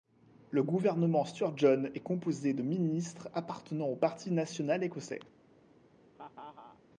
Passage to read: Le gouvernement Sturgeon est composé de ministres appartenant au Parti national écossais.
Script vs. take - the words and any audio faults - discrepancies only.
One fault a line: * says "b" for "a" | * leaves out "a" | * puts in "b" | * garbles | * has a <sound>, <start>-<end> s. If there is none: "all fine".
* has a laugh, 6.1-6.8 s